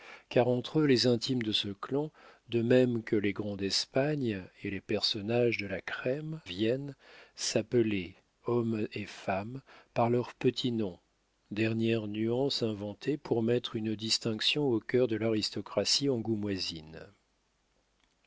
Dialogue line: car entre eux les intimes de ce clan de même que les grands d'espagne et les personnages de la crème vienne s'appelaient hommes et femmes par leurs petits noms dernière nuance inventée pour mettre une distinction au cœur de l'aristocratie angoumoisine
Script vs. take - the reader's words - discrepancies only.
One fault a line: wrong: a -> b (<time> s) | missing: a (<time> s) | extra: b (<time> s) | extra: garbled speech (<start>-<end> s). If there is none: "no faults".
no faults